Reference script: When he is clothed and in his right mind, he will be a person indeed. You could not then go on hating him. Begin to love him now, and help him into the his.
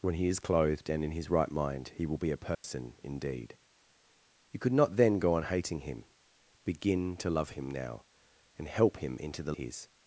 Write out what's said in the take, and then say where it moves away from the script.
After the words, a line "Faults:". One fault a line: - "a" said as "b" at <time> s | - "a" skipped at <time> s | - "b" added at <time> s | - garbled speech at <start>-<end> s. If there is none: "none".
When he is clothed and in his right mind, he will be a person indeed. You could not then go on hating him. Begin to love him now, and help him into the his.
Faults:
none